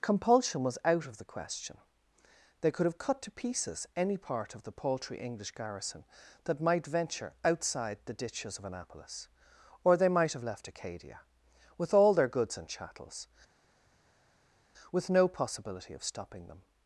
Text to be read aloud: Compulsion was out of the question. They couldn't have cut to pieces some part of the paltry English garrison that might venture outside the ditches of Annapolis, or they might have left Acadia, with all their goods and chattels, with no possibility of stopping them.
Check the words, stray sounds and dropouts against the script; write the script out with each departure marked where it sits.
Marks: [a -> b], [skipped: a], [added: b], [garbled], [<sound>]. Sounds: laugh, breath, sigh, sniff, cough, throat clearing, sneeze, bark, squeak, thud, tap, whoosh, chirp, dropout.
Compulsion was out of the question. They [couldn't -> could] have cut to pieces [some -> any] part of the paltry English garrison that might venture outside the ditches of Annapolis, or they might have left Acadia, with all their goods and chattels, with no possibility of stopping them.